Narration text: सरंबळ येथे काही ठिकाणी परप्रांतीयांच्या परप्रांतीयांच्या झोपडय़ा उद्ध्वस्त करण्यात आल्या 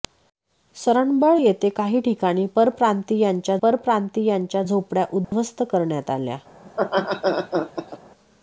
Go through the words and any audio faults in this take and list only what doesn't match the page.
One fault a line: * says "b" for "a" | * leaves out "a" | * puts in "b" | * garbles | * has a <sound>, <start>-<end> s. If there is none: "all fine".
* has a dropout, 5.2-5.3 s
* has a laugh, 6.7-8.0 s